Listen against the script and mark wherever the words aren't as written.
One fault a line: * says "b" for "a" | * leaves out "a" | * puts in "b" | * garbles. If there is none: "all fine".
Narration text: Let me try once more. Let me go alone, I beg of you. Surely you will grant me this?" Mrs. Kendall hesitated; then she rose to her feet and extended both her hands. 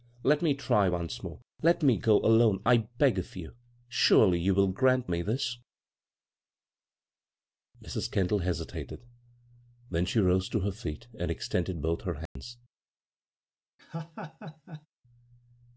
all fine